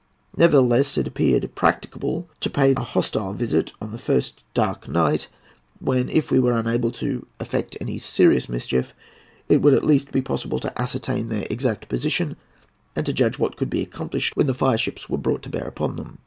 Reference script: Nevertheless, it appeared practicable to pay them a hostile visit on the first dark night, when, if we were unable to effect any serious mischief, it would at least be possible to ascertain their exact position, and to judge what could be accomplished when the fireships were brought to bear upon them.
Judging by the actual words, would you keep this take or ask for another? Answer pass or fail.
fail